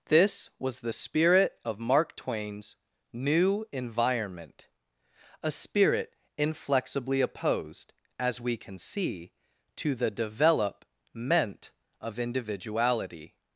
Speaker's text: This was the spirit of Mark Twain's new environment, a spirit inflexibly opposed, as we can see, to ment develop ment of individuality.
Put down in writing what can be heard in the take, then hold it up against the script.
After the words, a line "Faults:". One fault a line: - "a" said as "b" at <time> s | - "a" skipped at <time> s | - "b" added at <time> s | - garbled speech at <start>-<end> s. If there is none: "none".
This was the spirit of Mark Twain's new environment, a spirit inflexibly opposed, as we can see, to the develop ment of individuality.
Faults:
- "ment" said as "the" at 9.9 s